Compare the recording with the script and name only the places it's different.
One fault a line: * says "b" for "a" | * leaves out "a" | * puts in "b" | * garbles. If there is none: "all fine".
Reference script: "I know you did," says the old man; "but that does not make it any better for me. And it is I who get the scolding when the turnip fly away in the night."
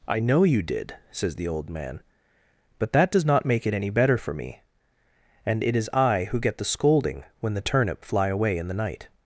all fine